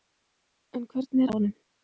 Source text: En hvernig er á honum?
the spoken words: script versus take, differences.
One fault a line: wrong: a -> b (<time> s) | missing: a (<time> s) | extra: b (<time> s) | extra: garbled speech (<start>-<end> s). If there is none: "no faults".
no faults